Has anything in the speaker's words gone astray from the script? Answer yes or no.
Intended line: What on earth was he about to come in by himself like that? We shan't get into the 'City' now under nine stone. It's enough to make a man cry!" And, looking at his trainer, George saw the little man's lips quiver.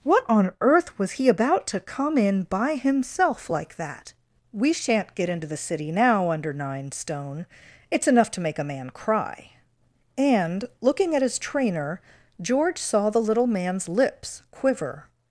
no